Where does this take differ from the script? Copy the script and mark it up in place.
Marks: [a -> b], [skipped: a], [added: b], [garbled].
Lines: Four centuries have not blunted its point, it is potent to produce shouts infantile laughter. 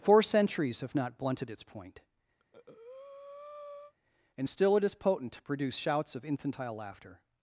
Four centuries have not blunted its point, [added: and still] it is potent to produce shouts [added: of] infantile laughter.